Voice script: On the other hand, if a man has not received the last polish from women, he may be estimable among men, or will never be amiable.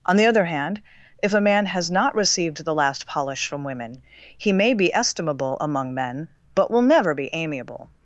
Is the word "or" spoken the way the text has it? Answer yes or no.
no